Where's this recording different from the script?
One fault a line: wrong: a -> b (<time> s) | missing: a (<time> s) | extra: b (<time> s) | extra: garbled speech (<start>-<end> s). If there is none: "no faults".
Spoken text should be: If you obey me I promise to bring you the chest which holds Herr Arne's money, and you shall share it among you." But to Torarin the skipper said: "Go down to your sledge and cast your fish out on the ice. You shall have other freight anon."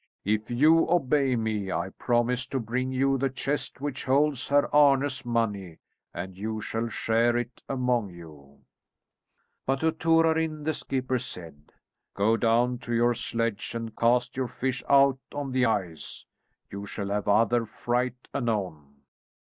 no faults